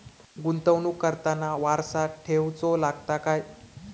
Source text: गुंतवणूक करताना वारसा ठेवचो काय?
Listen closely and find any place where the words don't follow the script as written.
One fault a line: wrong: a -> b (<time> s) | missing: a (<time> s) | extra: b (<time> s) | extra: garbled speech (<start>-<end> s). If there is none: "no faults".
extra: लागता (2.8 s)